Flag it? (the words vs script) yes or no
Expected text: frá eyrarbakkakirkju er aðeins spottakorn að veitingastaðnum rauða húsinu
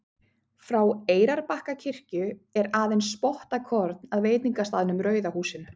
no